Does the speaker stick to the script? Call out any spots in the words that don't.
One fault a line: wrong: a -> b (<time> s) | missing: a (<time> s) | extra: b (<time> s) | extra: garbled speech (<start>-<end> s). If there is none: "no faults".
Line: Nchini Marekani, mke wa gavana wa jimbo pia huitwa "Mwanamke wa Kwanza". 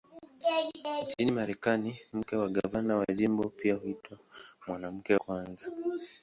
missing: wa (5.1 s)